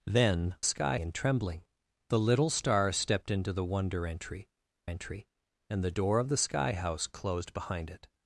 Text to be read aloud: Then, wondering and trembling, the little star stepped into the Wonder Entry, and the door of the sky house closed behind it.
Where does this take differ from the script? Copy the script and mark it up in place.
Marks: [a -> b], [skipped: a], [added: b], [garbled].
Then, [wondering -> sky] and trembling, the little star stepped into the Wonder Entry, [added: Entry] and the door of the sky house closed behind it.